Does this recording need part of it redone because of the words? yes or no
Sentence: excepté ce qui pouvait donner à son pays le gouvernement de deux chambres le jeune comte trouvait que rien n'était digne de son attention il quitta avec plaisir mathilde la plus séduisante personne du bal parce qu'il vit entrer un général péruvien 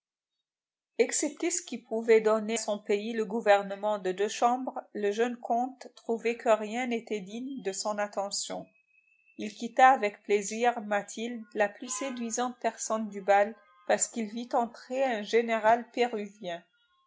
yes